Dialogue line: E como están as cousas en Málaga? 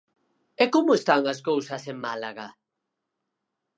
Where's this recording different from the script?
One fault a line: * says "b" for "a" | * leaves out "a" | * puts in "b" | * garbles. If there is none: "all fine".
all fine